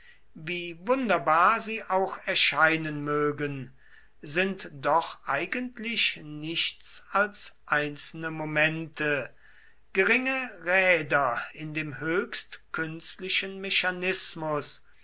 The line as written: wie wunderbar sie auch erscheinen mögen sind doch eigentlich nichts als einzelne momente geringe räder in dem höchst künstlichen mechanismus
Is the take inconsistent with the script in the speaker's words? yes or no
no